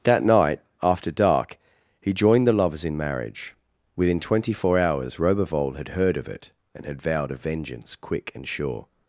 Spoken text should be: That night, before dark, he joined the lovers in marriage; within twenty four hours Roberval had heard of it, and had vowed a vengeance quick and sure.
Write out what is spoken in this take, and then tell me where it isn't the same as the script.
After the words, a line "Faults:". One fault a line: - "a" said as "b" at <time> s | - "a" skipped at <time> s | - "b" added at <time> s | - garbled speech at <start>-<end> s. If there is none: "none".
That night, after dark, he joined the lovers in marriage; within twenty four hours Roberval had heard of it, and had vowed a vengeance quick and sure.
Faults:
- "before" said as "after" at 0.8 s